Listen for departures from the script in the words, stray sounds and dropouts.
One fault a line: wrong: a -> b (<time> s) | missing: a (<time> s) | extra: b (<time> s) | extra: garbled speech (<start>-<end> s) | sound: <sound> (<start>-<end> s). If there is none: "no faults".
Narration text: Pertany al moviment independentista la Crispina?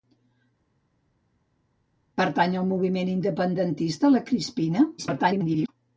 extra: garbled speech (5.0-5.7 s)